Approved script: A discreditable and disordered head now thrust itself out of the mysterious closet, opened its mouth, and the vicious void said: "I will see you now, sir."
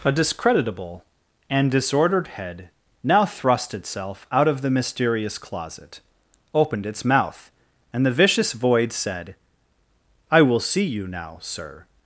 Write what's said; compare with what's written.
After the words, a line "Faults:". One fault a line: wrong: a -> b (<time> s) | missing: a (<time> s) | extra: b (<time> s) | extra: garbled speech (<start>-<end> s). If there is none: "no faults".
A discreditable and disordered head now thrust itself out of the mysterious closet, opened its mouth, and the vicious void said: "I will see you now, sir."
Faults:
no faults